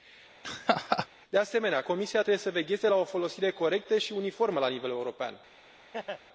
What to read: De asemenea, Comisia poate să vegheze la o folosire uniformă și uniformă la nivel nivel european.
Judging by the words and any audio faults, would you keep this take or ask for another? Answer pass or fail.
fail